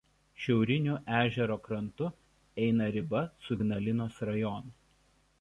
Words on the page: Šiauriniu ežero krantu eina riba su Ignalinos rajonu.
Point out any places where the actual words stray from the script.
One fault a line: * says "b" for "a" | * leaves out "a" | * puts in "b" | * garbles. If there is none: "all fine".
all fine